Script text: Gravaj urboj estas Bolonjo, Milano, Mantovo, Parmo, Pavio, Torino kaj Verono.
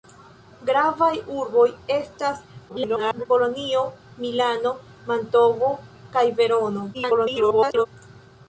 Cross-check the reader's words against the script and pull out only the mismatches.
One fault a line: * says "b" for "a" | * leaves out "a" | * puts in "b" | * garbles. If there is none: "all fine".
* garbles
* leaves out "Parmo Pavio Torino"
* garbles